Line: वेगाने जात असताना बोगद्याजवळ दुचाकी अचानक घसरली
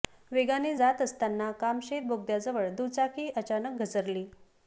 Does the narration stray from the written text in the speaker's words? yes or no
yes